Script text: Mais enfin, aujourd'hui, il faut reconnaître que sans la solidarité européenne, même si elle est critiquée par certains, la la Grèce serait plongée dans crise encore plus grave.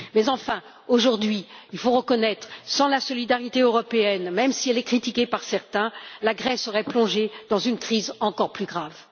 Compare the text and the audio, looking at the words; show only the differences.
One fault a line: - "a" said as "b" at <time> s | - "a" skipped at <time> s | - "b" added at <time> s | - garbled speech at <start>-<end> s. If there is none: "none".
- "la" skipped at 6.3 s
- "une" added at 7.6 s